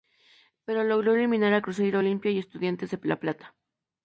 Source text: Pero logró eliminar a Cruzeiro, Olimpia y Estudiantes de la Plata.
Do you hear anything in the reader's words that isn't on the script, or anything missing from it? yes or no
no